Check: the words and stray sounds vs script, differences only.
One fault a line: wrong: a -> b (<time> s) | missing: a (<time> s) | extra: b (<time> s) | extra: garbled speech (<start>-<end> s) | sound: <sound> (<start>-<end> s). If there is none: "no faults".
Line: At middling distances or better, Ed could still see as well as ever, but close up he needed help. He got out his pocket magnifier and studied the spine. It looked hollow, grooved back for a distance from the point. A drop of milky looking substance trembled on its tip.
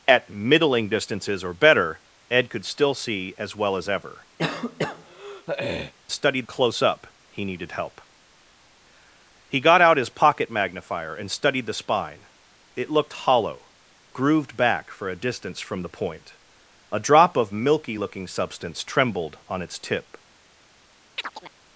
sound: throat clearing (4.4-5.9 s)
wrong: but -> studied (6.1 s)
sound: chirp (21.2-21.5 s)